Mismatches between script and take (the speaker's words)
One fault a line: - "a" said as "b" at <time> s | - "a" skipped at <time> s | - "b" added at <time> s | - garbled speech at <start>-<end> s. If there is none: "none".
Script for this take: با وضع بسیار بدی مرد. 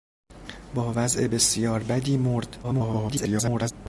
- garbled speech at 2.6-3.7 s